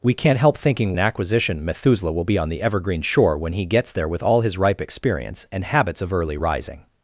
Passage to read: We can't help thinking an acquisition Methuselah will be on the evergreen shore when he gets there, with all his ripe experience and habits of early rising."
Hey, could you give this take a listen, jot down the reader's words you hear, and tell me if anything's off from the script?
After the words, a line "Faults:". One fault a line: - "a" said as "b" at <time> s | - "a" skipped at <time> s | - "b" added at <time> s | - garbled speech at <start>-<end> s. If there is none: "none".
We can't help thinking an acquisition Methuselah will be on the evergreen shore when he gets there, with all his ripe experience and habits of early rising."
Faults:
none